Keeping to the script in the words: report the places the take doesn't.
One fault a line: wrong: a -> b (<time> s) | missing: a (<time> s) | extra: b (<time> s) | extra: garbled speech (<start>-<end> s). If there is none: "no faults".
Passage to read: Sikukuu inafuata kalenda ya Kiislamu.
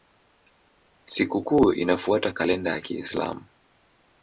no faults